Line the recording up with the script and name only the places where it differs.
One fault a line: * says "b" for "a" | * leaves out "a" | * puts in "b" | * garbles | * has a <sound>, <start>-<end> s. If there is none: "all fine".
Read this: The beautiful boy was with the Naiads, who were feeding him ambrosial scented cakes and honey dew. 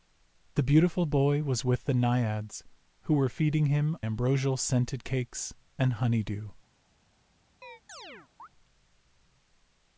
* has a chirp, 7.6-8.5 s